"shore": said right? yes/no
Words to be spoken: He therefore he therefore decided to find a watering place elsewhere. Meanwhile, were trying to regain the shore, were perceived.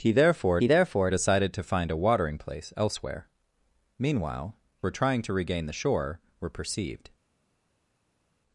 yes